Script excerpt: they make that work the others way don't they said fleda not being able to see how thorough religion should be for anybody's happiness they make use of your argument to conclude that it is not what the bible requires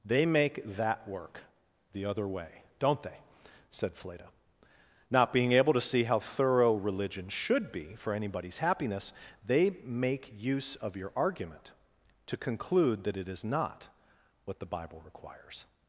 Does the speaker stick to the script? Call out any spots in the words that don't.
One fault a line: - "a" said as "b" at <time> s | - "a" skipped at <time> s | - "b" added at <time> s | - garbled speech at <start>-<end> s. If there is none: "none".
- "others" said as "other" at 2.0 s